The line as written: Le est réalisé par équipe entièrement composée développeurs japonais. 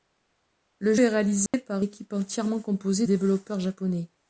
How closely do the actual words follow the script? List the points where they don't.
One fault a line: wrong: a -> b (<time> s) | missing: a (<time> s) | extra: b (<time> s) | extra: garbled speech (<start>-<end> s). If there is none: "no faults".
no faults